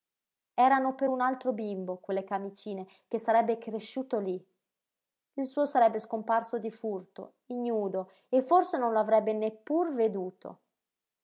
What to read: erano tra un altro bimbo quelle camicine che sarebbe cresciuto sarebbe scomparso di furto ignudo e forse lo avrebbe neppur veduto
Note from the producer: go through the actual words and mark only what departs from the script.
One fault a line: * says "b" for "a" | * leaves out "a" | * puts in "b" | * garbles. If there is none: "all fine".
* says "per" for "tra"
* puts in "lí il suo"
* puts in "non"